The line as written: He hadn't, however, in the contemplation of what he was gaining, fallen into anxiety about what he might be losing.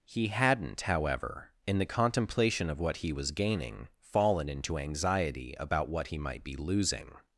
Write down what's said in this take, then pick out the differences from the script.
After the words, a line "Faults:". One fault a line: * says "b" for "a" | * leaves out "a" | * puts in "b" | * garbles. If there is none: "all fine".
He hadn't, however, in the contemplation of what he was gaining, fallen into anxiety about what he might be losing.
Faults:
all fine